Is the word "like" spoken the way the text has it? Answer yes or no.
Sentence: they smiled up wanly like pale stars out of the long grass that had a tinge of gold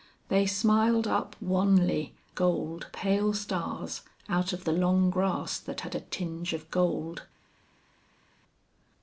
no